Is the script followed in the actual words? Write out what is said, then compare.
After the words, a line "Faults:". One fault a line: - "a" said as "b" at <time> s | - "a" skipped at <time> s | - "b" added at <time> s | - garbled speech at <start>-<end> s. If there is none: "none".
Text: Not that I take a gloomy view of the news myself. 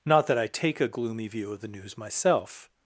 Not that I take a gloomy view of the news myself.
Faults:
none